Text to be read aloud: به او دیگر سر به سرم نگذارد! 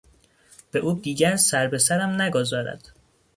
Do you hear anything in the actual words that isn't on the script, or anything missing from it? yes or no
no